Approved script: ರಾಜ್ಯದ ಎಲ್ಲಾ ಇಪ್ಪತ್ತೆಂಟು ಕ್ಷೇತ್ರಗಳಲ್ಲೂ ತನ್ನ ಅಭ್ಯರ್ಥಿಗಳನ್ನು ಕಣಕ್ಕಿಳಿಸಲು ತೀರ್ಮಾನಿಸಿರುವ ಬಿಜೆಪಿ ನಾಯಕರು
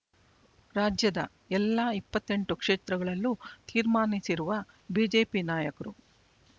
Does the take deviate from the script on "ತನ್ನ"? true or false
true